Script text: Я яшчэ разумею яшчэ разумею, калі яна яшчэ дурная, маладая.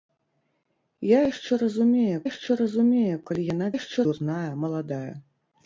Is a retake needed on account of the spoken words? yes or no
no